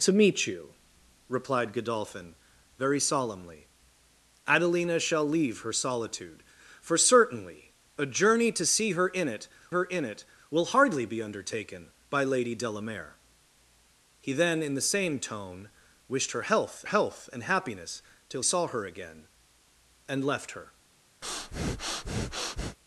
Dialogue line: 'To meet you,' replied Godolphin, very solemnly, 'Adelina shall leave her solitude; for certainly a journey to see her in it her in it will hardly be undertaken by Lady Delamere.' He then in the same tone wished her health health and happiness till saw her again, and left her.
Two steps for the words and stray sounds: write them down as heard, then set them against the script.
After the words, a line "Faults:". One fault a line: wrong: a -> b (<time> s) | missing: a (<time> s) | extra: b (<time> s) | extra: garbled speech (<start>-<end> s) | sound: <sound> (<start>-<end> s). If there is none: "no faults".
'To meet you,' replied Godolphin, very solemnly, 'Adelina shall leave her solitude; for certainly a journey to see her in it her in it will hardly be undertaken by Lady Delamere.' He then in the same tone wished her health health and happiness till saw her again, and left her.
Faults:
sound: breath (21.2-22.8 s)